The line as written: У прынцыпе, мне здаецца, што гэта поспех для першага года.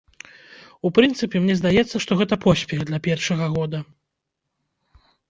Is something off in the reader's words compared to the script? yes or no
no